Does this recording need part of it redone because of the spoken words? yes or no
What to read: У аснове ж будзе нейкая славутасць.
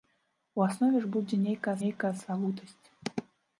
yes